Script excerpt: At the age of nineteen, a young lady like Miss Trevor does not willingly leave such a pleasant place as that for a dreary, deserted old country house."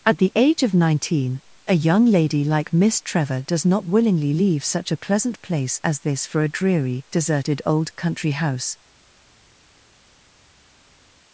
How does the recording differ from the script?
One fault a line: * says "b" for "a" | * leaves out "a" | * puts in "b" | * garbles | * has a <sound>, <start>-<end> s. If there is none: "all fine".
* says "this" for "that"